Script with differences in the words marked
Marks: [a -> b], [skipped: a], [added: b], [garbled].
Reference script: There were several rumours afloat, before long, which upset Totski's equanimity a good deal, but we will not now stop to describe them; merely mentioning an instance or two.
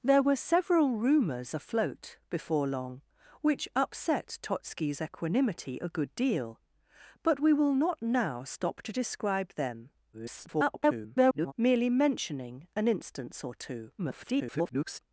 There were several rumours afloat, before long, which upset Totski's equanimity a good deal, but we will not now stop to describe them; [garbled] merely mentioning an instance or two. [garbled]